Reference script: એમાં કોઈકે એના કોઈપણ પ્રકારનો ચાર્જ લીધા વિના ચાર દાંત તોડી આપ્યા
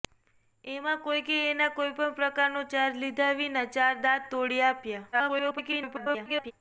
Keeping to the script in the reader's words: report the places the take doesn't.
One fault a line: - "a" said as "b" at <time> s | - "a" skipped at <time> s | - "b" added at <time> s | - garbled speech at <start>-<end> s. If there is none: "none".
- garbled speech at 5.1-6.5 s